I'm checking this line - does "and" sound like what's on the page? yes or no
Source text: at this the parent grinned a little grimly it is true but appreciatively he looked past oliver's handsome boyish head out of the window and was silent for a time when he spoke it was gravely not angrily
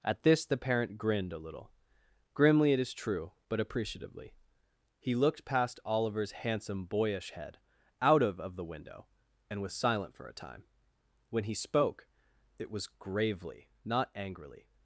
yes